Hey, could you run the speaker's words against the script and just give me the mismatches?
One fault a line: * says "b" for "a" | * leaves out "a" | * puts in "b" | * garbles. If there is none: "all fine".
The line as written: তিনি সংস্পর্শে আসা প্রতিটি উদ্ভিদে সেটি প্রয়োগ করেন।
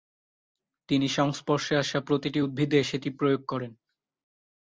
all fine